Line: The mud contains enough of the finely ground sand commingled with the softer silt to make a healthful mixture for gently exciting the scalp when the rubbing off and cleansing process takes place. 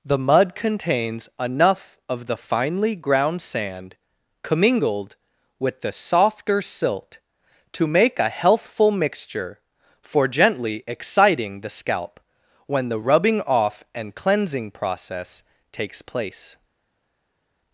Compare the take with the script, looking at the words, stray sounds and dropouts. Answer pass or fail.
pass